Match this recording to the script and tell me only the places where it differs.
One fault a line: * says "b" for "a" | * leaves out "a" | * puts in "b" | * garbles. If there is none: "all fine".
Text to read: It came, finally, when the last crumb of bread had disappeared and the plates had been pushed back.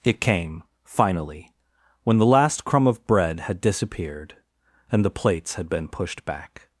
all fine